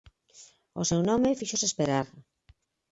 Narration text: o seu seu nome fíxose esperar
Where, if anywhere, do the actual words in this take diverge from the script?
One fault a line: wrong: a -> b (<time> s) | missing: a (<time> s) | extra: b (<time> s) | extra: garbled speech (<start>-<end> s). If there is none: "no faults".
missing: seu (1.0 s)